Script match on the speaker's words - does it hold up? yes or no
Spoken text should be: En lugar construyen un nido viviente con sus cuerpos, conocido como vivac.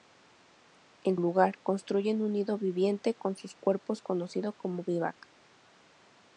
yes